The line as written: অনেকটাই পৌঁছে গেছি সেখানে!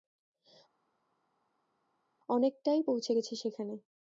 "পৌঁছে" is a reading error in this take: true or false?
false